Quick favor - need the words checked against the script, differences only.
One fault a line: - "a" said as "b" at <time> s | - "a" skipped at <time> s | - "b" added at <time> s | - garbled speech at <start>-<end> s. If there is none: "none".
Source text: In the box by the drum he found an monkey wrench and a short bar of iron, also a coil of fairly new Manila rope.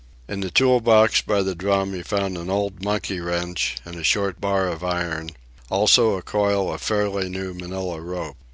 - "tool" added at 0.5 s
- "old" added at 2.5 s